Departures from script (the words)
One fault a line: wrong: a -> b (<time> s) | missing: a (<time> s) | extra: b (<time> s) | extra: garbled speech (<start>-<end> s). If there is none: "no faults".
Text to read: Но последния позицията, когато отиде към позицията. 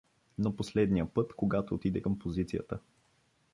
wrong: позицията -> път (1.1 s)